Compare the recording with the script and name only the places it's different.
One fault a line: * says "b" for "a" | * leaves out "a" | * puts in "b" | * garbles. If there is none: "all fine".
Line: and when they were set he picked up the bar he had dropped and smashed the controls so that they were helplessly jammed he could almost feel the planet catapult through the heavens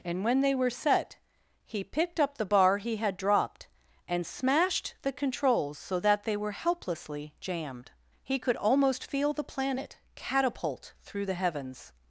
all fine